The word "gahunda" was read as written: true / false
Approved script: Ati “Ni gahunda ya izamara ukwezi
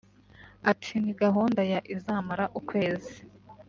true